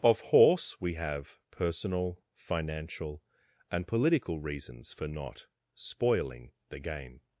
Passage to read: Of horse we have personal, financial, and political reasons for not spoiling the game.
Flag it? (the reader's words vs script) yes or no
no